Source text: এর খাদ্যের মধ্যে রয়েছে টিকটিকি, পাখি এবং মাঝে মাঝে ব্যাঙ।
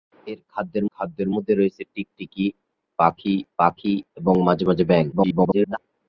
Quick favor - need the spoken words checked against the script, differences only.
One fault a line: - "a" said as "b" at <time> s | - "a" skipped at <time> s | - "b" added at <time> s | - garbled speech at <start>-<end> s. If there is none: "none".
- "খাদ্যের" added at 0.9 s
- "পাখি" added at 3.6 s
- garbled speech at 5.1-5.8 s